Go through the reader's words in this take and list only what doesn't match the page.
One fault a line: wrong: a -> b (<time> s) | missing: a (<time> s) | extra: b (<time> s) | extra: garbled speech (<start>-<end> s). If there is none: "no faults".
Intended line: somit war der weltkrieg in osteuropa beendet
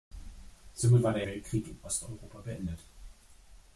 no faults